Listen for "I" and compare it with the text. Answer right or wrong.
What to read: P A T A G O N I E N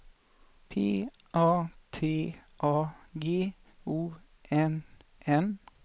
wrong